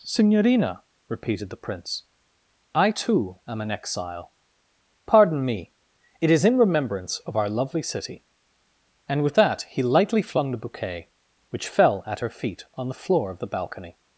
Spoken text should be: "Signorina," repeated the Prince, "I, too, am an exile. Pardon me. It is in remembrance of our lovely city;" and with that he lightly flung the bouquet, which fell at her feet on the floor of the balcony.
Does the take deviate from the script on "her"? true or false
false